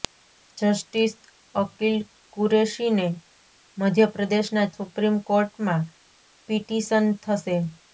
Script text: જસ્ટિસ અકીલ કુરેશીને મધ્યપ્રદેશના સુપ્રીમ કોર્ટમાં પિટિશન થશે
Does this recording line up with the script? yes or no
yes